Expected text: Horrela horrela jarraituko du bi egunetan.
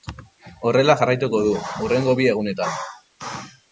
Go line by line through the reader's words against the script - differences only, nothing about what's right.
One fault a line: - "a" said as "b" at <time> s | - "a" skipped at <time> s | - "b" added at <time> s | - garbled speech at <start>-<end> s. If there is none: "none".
- "horrela" skipped at 0.9 s
- "hurrengo" added at 1.9 s